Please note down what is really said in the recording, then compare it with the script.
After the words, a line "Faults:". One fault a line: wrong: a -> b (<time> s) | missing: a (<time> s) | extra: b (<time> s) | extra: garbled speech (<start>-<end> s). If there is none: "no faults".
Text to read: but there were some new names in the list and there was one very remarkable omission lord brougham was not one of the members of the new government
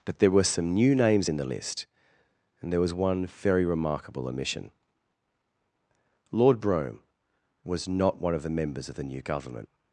but there were some new names in the list and there was one very remarkable omission lord brougham was not one of the members of the new government
Faults:
no faults